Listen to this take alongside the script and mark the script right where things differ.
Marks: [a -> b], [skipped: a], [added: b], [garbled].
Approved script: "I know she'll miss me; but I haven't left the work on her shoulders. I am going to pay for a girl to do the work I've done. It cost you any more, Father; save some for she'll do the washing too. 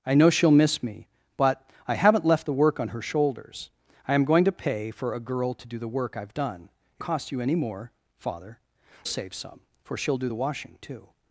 "I know she'll miss me; but I haven't left the work on her shoulders. I am going to pay for a girl to do the work I've done. It cost you any more, Father; save some for she'll do the washing too.